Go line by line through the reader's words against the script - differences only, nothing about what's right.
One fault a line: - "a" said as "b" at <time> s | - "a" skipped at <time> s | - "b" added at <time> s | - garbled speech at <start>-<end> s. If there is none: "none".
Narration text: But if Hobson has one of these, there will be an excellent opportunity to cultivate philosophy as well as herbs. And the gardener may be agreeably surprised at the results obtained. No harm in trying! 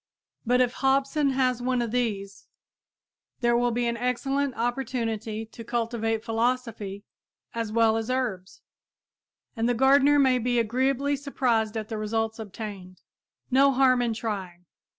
none